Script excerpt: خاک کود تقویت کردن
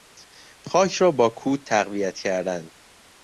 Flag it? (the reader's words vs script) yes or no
yes